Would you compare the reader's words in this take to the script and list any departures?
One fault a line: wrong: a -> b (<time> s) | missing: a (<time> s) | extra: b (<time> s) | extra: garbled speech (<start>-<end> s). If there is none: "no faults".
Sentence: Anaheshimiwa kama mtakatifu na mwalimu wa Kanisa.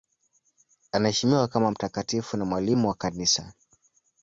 no faults